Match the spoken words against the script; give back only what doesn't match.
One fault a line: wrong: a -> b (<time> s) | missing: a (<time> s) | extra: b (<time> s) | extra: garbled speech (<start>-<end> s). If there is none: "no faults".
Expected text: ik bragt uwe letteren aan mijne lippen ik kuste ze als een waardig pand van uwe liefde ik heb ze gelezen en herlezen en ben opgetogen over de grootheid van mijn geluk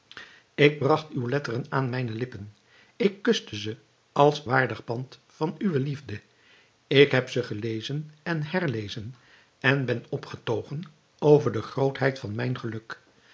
missing: een (4.4 s)